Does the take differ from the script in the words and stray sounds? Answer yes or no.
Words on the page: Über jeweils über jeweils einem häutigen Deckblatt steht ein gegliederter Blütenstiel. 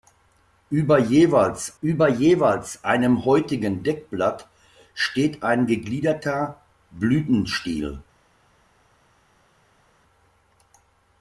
no